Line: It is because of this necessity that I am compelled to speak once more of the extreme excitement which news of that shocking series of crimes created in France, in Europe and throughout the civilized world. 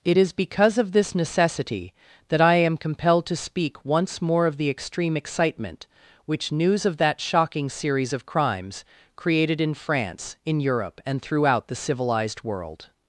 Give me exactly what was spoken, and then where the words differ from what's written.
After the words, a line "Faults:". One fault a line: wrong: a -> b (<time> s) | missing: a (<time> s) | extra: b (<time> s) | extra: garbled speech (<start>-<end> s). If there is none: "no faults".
It is because of this necessity that I am compelled to speak once more of the extreme excitement which news of that shocking series of crimes created in France, in Europe and throughout the civilized world.
Faults:
no faults